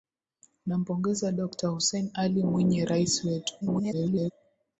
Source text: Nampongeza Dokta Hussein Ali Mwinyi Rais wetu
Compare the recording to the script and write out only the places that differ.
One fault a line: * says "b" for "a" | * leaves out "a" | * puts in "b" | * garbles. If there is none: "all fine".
* garbles